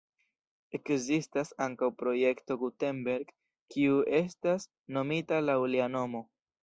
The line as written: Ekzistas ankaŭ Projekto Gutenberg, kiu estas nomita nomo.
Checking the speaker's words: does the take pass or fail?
fail